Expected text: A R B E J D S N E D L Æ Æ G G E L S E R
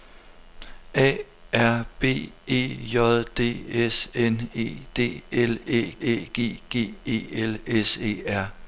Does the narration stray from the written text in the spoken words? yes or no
no